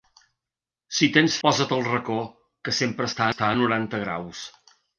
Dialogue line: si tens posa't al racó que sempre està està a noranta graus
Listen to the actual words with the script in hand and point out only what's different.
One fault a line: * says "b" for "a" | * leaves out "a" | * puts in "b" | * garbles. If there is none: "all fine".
all fine